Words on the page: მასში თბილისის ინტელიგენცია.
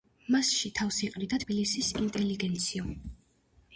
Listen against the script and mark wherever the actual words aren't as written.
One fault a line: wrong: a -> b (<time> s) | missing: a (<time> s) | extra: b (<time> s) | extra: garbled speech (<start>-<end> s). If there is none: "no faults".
extra: თავს იყრიდა (0.8 s)